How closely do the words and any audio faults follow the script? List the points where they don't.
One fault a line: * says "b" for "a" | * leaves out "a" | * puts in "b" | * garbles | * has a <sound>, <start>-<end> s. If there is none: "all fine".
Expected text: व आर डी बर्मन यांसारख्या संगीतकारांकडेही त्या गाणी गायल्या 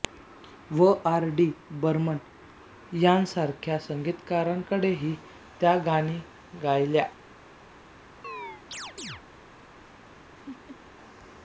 * has a chirp, 8.2-9.2 s
* has a laugh, 10.3-10.8 s